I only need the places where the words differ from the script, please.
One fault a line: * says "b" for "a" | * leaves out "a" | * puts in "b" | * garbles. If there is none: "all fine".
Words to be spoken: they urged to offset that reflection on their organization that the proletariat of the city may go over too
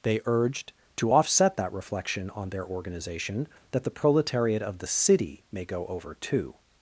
all fine